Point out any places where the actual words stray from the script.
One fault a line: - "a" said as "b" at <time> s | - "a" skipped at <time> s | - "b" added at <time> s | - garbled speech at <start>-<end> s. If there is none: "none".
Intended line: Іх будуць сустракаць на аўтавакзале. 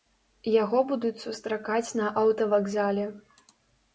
- "Іх" said as "Яго" at 0.5 s